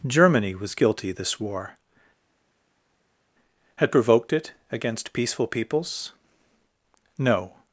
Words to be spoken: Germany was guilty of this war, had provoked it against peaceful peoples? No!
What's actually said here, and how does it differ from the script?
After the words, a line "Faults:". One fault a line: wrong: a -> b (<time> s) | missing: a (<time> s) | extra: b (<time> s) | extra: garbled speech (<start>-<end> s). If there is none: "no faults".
Germany was guilty this war, had provoked it against peaceful peoples? No!
Faults:
missing: of (1.1 s)